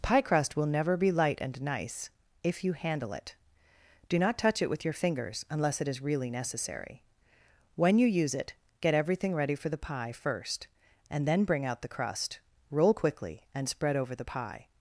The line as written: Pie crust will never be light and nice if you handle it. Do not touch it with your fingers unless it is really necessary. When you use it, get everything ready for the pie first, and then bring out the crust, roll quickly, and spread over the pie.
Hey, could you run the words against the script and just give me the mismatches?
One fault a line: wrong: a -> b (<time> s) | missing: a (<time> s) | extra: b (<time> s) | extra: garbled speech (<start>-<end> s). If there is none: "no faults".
no faults